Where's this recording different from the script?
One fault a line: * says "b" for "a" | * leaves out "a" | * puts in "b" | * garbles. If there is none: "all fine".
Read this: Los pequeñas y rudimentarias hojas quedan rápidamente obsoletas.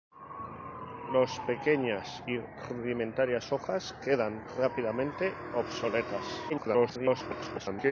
* garbles